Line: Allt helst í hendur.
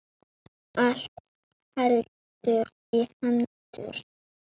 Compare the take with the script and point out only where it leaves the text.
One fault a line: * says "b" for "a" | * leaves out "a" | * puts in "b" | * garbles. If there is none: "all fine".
all fine